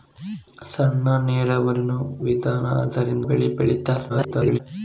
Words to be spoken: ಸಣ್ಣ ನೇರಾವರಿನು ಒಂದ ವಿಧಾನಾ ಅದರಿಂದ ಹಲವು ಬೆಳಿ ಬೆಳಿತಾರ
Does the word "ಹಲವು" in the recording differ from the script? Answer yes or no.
yes